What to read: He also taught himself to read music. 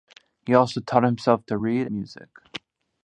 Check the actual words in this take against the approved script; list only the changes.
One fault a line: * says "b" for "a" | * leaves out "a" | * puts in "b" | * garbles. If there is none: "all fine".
all fine